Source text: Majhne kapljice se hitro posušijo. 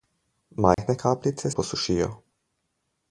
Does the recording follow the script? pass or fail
fail